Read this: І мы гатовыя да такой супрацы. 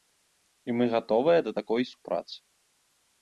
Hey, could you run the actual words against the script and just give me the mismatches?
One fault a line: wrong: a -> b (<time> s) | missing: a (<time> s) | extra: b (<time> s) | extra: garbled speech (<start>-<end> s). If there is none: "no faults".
no faults